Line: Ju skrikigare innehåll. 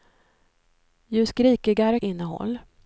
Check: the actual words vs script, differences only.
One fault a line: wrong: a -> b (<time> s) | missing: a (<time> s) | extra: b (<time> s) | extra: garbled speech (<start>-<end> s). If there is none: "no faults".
no faults